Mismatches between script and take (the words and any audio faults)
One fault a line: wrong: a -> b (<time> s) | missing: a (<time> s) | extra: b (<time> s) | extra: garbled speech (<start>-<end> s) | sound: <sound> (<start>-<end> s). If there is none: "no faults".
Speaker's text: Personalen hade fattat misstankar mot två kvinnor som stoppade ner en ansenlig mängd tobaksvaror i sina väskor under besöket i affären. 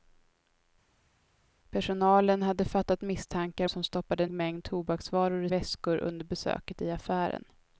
missing: mot två kvinnor (3.7 s)
missing: ner en ansenlig (4.3 s)
missing: sina (5.5 s)